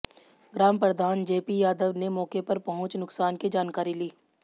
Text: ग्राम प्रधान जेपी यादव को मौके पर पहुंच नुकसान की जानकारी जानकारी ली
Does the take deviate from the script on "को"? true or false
true